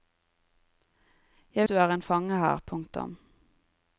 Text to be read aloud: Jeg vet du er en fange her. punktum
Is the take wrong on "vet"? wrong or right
wrong